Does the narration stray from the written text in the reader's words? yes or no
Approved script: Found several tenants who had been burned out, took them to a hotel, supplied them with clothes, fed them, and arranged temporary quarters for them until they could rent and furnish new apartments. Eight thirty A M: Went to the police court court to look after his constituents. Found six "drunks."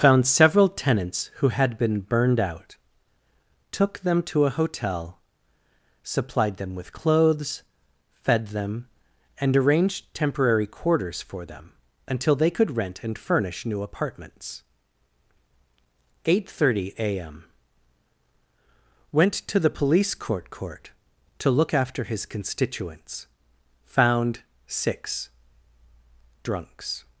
no